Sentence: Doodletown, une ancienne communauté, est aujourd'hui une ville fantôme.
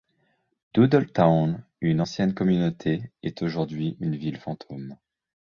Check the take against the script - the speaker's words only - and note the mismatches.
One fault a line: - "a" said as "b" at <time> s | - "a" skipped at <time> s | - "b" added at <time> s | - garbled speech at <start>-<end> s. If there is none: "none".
none